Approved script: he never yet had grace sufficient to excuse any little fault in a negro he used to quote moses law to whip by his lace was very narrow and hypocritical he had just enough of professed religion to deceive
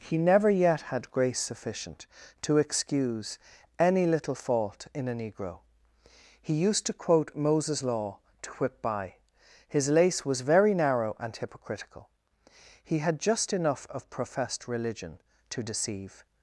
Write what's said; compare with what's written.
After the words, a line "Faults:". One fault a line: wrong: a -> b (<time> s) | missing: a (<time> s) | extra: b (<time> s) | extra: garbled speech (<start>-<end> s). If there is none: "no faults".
he never yet had grace sufficient to excuse any little fault in a negro he used to quote moses law to whip by his lace was very narrow and hypocritical he had just enough of professed religion to deceive
Faults:
no faults